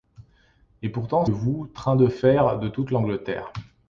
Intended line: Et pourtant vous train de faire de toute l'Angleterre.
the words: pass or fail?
pass